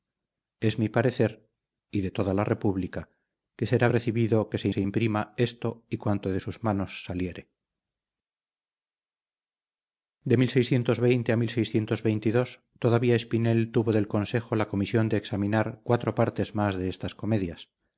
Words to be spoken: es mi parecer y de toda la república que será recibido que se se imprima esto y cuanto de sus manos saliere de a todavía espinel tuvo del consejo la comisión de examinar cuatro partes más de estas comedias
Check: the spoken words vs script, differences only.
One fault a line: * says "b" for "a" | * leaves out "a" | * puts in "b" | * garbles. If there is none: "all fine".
all fine